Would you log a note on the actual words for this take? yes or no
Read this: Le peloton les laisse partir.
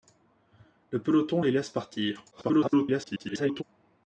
yes